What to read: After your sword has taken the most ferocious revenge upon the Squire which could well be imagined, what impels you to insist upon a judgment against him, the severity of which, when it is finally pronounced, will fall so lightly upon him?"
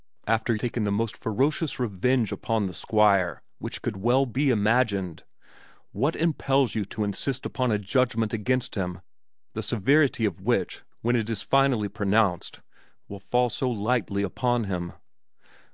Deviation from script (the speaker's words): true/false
true